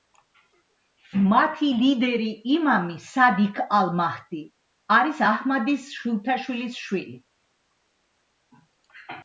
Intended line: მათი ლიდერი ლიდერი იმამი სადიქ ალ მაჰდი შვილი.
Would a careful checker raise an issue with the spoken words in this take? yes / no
yes